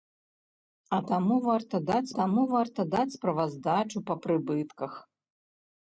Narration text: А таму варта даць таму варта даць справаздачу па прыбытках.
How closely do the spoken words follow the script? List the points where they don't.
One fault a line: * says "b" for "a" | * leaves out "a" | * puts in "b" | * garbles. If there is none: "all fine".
all fine